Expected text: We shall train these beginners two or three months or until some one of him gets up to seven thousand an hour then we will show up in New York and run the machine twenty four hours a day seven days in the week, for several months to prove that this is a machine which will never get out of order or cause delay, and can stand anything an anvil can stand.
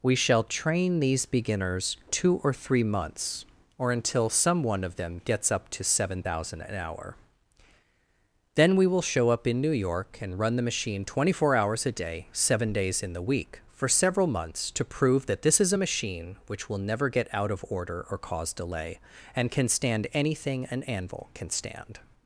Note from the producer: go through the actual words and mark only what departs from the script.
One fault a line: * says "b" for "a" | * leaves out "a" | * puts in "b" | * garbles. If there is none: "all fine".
* says "them" for "him"